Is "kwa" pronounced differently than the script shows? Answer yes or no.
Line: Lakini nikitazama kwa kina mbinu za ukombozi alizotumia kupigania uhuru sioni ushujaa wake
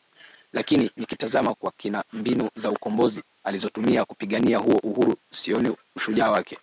no